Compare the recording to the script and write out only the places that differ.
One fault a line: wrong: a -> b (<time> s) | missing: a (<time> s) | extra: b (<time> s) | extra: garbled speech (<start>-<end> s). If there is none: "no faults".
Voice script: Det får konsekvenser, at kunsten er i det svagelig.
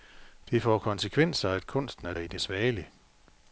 no faults